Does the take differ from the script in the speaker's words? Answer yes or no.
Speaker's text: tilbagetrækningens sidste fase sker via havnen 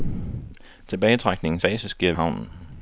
yes